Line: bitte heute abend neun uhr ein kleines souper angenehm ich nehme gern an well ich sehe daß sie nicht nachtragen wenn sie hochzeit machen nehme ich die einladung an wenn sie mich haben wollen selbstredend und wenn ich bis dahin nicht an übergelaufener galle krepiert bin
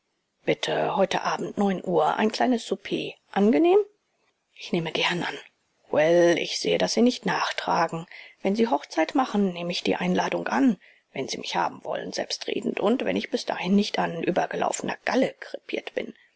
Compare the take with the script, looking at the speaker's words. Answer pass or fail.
pass